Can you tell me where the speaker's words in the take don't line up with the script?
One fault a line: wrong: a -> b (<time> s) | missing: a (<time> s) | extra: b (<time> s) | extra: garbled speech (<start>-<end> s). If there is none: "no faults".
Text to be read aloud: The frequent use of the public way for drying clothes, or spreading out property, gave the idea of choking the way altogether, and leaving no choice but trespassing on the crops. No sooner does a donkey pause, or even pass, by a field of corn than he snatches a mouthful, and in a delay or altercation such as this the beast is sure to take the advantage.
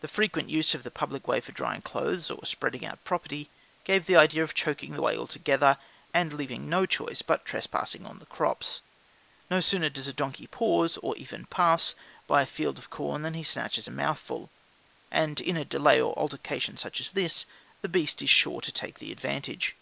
no faults